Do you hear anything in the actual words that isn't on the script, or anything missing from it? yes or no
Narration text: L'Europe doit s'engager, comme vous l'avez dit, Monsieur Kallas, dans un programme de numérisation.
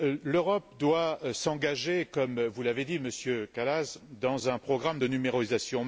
no